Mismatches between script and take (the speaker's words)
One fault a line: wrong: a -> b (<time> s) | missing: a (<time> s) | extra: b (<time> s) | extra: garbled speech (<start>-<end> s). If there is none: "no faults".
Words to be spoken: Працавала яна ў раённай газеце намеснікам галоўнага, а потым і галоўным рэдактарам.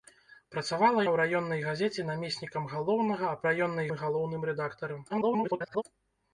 missing: яна (1.0 s)
wrong: потым -> раённай (3.5 s)
extra: garbled speech (5.1-5.8 s)